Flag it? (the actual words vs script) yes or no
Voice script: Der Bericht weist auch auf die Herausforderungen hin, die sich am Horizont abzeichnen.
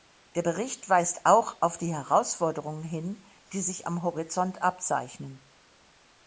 no